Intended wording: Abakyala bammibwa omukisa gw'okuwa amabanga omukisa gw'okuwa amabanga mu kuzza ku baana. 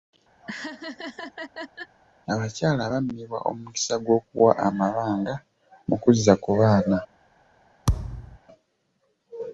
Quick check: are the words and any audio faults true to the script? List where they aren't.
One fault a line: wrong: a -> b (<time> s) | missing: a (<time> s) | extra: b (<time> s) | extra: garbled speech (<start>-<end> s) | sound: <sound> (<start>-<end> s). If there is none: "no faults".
sound: laugh (0.4-2.0 s)
missing: omukisa gw'okuwa amabanga (5.3 s)
sound: thud (7.9-8.4 s)